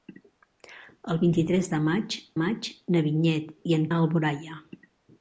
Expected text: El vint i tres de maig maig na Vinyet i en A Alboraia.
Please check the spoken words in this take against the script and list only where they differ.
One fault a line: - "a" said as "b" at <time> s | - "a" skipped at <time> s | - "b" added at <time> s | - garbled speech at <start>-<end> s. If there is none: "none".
none